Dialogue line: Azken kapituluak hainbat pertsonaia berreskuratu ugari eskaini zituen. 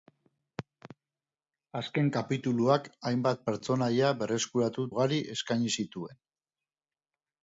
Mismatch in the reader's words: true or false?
false